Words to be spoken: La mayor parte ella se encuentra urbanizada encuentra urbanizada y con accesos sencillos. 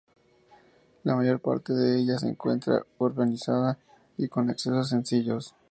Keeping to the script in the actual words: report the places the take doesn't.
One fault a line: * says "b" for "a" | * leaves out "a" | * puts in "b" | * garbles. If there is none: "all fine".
* puts in "de"
* leaves out "encuentra urbanizada"